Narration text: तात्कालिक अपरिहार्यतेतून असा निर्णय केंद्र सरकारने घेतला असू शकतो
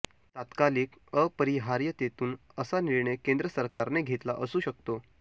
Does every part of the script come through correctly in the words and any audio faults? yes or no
no